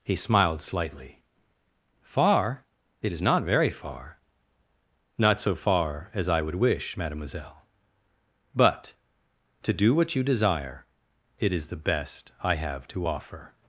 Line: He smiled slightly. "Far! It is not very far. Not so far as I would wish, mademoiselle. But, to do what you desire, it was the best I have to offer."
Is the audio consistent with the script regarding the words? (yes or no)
no